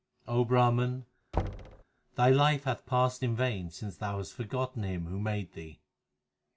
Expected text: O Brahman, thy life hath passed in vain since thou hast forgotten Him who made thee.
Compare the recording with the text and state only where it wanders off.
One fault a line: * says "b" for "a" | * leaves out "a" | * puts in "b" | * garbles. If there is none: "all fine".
all fine